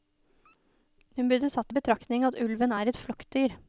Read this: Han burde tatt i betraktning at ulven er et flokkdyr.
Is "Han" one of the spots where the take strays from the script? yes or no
yes